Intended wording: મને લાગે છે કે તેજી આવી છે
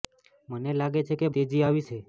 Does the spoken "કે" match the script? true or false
true